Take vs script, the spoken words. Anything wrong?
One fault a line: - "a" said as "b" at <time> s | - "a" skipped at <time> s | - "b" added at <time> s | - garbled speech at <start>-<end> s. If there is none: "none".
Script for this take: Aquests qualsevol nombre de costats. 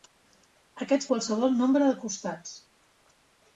none